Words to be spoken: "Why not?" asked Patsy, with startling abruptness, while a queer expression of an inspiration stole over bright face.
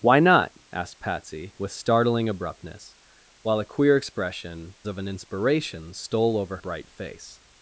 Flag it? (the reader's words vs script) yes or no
no